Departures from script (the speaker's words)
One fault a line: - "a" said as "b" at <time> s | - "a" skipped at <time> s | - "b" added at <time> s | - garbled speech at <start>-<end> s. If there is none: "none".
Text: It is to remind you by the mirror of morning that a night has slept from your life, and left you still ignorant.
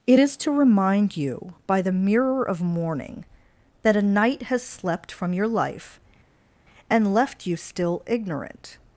none